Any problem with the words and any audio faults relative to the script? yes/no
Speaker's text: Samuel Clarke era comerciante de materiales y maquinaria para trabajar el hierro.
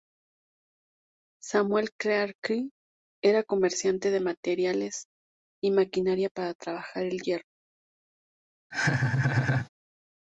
yes